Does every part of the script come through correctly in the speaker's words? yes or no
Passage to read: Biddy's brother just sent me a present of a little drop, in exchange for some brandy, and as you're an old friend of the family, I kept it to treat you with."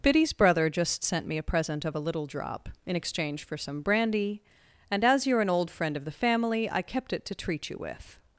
yes